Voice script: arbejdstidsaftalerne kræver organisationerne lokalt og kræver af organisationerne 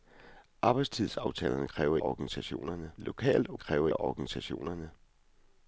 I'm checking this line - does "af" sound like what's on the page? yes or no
yes